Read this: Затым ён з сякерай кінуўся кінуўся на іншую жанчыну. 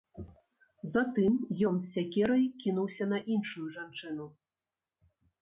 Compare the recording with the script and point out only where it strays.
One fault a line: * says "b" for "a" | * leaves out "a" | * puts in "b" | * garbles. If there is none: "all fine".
* leaves out "кінуўся"